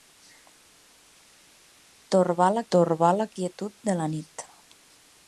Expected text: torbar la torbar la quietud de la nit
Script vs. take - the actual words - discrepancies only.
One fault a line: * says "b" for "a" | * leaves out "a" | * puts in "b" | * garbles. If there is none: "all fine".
all fine